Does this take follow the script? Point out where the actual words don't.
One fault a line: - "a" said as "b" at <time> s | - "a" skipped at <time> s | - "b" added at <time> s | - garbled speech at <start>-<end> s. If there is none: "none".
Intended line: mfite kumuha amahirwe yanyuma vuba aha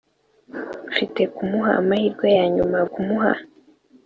- "vuba" said as "kumuha" at 2.9 s